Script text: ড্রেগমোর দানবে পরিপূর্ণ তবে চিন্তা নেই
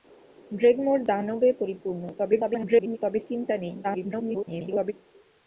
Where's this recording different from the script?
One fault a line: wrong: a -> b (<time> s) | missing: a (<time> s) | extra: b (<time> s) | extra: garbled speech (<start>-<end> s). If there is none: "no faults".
extra: garbled speech (2.2-3.0 s)
extra: garbled speech (3.8-4.9 s)